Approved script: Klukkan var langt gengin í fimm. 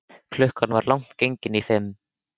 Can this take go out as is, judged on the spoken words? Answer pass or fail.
pass